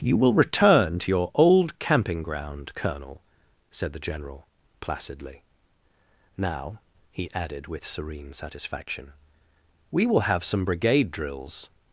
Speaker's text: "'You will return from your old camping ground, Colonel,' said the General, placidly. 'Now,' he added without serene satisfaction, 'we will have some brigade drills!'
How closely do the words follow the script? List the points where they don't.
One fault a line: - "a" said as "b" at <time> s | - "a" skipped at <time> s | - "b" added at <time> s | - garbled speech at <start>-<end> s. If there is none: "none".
- "from" said as "to" at 1.0 s
- "without" said as "with" at 7.7 s